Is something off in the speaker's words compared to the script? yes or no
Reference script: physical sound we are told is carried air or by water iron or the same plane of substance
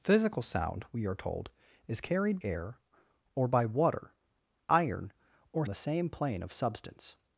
no